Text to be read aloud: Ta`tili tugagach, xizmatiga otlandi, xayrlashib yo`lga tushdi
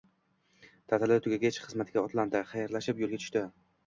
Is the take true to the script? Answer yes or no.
yes